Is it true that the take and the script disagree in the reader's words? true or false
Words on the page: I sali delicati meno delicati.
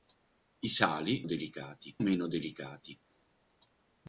false